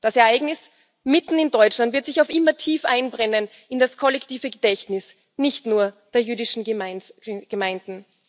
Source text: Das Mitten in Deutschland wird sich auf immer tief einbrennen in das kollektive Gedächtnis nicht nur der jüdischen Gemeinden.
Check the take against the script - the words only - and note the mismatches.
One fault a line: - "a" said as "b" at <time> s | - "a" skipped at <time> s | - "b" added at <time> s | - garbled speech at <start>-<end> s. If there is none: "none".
- "Ereignis" added at 0.1 s